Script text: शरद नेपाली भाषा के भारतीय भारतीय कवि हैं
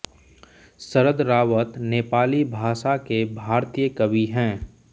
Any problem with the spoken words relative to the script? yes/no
yes